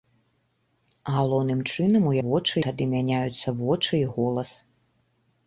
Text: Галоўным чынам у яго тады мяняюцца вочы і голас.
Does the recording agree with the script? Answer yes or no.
no